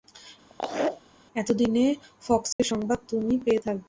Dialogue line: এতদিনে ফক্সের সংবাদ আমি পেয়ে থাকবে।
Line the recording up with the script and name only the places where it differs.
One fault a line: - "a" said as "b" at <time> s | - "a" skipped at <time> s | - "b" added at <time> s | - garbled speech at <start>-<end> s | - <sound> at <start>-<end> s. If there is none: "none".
- laugh at 0.5-1.0 s
- dropout at 2.5-2.6 s
- "আমি" said as "তুমি" at 3.1 s